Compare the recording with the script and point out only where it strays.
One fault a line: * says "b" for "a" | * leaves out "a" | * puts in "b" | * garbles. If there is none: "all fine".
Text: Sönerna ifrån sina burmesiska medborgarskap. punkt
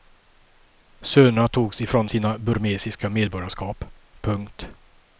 * puts in "togs"